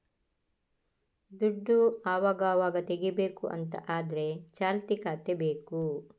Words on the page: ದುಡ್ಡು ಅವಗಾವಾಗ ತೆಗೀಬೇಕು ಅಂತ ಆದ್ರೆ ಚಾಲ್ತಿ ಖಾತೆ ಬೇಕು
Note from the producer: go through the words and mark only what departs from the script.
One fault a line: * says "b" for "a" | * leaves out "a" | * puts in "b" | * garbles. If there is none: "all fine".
all fine